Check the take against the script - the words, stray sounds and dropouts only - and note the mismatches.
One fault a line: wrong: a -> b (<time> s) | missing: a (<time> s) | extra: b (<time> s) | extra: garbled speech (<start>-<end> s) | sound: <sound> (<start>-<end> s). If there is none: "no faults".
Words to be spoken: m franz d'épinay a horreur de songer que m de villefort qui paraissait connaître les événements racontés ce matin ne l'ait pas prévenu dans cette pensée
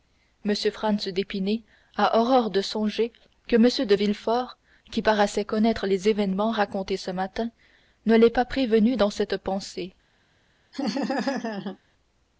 sound: laugh (10.7-11.8 s)